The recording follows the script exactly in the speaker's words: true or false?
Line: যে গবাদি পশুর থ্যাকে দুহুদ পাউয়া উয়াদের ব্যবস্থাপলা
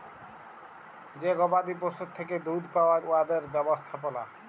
true